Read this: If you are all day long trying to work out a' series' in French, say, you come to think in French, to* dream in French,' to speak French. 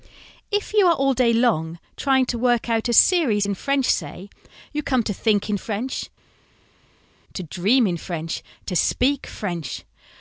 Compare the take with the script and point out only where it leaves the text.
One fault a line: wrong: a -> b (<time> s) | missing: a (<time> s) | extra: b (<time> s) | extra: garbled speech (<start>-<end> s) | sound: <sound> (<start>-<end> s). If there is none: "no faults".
no faults